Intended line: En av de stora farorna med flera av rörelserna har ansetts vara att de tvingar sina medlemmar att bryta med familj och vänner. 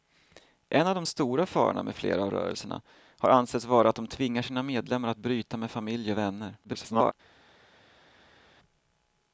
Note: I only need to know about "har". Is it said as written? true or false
true